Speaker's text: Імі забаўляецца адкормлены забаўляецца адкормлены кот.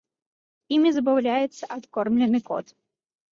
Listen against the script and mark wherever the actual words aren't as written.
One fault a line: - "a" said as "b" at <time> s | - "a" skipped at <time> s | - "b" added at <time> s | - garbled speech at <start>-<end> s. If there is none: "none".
- "забаўляецца адкормлены" skipped at 2.4 s